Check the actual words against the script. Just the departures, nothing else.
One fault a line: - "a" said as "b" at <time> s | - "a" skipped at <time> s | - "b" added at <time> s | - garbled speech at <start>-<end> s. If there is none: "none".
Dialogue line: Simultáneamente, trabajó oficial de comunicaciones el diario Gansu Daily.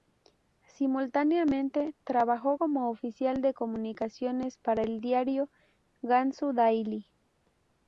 - "como" added at 2.5 s
- "para" added at 4.6 s